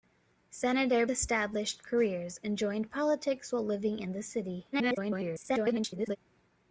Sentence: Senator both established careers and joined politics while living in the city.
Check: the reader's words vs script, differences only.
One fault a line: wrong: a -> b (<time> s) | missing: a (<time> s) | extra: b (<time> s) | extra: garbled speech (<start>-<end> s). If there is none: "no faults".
missing: both (1.1 s)
extra: garbled speech (4.7-6.2 s)